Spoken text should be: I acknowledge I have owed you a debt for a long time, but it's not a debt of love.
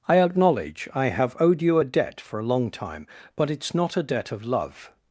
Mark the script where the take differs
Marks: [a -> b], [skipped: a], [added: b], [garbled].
I acknowledge I have owed you a debt for a long time, but it's not a debt of love.